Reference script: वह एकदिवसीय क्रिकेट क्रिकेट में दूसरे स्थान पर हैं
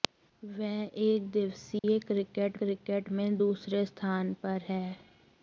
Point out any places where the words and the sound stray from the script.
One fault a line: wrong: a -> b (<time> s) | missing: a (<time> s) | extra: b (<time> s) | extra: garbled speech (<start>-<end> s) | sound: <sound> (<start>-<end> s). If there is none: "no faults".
sound: dropout (1.8-1.8 s)